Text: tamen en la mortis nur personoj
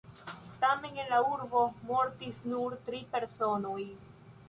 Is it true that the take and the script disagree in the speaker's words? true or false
true